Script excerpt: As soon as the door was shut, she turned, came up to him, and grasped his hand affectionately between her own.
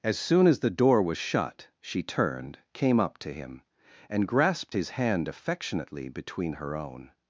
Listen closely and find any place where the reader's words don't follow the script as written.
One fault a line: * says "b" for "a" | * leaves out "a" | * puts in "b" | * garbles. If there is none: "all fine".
all fine